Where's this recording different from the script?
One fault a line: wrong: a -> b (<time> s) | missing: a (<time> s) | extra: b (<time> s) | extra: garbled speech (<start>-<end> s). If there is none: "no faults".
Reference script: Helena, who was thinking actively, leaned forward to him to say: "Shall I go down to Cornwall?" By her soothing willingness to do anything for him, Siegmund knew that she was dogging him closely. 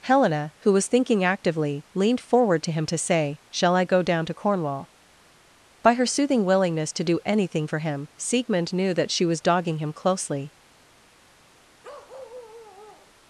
no faults